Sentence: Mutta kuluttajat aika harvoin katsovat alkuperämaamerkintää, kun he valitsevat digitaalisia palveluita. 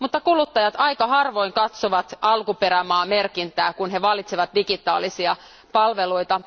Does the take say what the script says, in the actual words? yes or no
yes